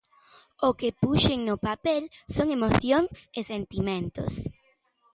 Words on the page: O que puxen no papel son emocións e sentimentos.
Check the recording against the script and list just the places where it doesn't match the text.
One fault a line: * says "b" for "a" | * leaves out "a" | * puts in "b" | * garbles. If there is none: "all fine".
all fine